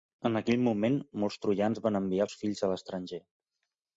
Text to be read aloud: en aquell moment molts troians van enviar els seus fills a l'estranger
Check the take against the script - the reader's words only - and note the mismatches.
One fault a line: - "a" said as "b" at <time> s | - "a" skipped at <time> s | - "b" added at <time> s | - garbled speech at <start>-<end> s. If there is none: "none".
- "els" skipped at 2.3 s